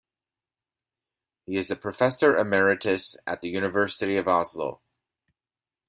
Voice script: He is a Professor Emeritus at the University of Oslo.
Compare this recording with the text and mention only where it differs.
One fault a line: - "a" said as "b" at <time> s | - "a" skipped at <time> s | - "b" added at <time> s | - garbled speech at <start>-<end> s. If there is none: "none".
none